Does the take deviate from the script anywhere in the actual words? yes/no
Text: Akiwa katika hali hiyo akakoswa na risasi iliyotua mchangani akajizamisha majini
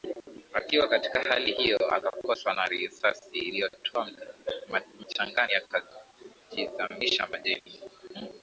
no